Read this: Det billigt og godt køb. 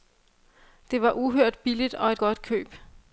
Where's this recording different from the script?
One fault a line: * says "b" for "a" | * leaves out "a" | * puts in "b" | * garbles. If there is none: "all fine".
* puts in "var uhørt"
* puts in "et"